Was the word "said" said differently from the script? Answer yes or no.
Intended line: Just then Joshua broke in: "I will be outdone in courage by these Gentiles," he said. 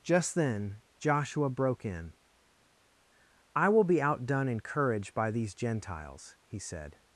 no